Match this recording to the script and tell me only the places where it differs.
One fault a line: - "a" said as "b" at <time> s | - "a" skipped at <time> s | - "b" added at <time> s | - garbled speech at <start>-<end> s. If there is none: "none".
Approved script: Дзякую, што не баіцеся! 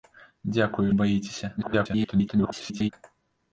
- "што" skipped at 0.8 s
- garbled speech at 1.6-2.9 s